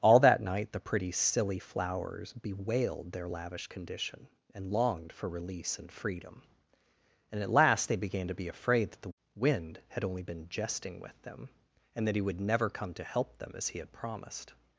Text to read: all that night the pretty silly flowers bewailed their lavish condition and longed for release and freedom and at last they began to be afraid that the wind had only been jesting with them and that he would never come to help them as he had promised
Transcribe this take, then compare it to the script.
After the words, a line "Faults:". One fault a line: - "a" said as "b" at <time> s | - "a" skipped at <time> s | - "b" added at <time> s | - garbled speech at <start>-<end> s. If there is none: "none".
all that night the pretty silly flowers bewailed their lavish condition and longed for release and freedom and at last they began to be afraid that the wind had only been jesting with them and that he would never come to help them as he had promised
Faults:
none